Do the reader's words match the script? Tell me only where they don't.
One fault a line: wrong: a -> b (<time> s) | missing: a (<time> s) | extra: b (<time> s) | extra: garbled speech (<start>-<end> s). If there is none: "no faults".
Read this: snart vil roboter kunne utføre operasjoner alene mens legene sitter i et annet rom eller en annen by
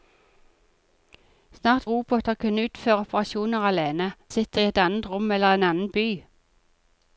missing: vil (1.9 s)
missing: mens legene (4.1 s)